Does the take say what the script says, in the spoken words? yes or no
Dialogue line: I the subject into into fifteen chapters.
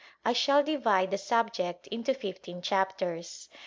no